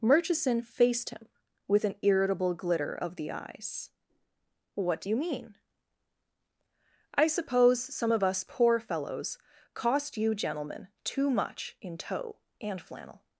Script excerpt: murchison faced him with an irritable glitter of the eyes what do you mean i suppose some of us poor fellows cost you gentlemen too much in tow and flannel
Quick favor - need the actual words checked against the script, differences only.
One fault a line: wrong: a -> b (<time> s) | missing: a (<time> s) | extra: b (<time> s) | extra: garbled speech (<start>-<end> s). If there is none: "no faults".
no faults